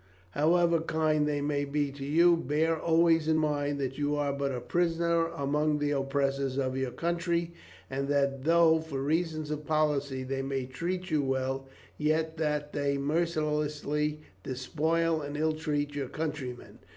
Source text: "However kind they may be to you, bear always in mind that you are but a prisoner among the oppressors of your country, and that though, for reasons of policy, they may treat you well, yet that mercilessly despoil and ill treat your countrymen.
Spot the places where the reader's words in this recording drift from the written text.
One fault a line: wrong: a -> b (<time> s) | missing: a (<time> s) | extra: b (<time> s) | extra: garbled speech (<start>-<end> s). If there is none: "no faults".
extra: they (12.7 s)